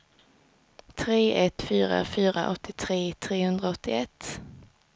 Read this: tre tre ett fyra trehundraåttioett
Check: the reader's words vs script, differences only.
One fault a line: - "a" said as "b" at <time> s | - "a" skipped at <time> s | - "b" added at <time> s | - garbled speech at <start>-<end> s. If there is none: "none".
- "tre" skipped at 1.4 s
- "fyra åttiotre" added at 2.0 s